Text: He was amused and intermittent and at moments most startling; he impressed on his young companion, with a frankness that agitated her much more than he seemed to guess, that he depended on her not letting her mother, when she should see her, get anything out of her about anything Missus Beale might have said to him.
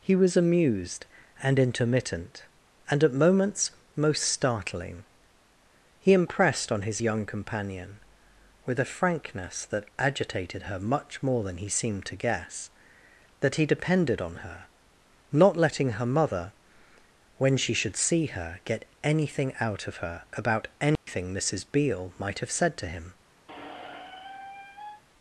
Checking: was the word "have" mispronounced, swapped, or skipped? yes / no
no